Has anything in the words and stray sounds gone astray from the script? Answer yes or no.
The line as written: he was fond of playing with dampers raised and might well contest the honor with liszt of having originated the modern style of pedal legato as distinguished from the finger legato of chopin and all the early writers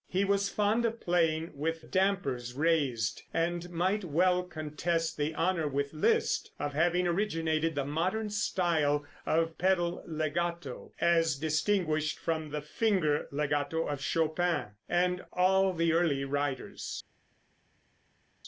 no